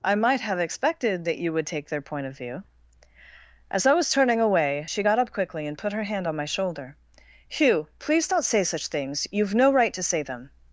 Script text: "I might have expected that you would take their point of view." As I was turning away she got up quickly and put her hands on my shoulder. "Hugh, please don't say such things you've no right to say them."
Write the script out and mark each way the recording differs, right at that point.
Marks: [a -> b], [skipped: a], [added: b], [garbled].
"I might have expected that you would take their point of view." As I was turning away she got up quickly and put her [hands -> hand] on my shoulder. "Hugh, please don't say such things you've no right to say them."